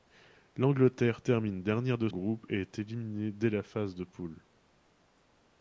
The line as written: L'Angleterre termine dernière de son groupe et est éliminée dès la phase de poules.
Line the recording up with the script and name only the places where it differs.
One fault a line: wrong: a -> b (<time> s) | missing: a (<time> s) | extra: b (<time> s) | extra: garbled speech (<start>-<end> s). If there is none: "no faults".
missing: son (2.1 s)